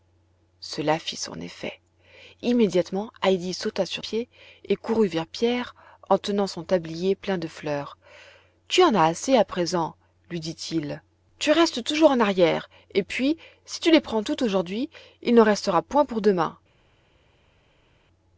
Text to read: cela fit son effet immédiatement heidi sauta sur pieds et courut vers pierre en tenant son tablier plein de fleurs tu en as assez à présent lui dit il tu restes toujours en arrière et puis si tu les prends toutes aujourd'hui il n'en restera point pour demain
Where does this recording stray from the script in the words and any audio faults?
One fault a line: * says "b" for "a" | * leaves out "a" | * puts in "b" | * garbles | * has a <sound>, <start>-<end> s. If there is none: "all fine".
all fine